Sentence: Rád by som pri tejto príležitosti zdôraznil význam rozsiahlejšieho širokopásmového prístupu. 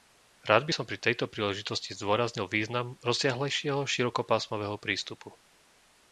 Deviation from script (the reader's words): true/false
false